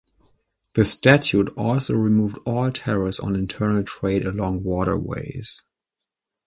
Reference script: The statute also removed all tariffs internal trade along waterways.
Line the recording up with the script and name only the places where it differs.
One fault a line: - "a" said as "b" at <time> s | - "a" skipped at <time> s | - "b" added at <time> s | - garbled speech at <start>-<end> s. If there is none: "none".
- "on" added at 3.2 s